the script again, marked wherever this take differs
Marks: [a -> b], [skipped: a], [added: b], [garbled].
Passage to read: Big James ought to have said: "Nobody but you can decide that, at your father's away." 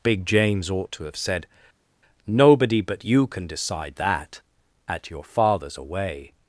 Big James ought to have said: "Nobody but you can decide that, at your father's away."